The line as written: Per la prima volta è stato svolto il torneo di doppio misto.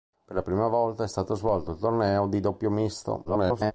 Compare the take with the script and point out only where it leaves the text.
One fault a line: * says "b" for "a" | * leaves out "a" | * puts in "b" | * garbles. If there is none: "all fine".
* garbles